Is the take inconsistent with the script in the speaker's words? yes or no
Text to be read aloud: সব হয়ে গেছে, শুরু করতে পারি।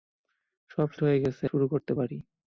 no